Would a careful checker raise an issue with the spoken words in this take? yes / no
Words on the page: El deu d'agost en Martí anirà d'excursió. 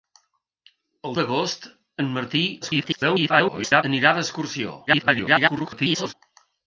yes